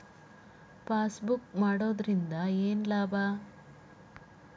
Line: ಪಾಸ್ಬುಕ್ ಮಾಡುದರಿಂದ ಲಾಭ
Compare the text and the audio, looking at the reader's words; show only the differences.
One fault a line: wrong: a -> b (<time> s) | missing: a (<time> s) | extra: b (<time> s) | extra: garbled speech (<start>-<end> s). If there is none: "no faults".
extra: ಏನು (2.6 s)